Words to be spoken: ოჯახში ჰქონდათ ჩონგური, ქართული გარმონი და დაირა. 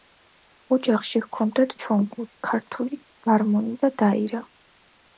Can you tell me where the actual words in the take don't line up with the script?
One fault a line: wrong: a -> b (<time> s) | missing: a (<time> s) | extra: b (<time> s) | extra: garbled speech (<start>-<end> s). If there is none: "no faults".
no faults